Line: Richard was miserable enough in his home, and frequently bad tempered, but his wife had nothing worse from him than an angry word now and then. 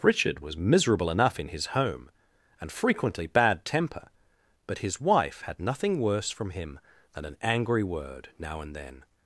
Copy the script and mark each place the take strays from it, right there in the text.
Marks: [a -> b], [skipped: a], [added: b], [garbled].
Richard was miserable enough in his home, and frequently bad [tempered, -> temper] but his wife had nothing worse from him than an angry word now and then.